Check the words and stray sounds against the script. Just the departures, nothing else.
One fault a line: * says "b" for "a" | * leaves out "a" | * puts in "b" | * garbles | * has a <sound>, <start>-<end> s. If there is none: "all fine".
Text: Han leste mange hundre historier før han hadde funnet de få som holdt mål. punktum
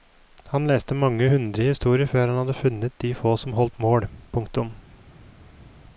all fine